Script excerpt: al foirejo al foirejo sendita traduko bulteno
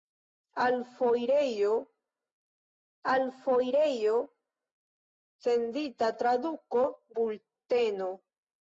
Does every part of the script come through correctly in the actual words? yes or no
yes